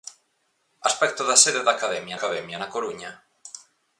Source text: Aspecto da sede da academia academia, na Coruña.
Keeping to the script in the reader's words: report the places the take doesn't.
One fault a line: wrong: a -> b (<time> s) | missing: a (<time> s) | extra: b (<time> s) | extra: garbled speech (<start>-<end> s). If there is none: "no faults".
no faults